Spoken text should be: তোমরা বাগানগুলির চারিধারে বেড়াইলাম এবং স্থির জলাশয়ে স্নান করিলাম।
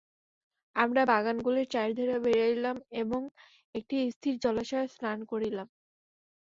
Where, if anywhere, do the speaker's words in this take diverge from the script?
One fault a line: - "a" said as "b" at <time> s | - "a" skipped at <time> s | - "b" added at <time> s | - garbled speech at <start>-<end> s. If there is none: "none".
- "তোমরা" said as "আমরা" at 0.8 s
- "একটি" added at 3.7 s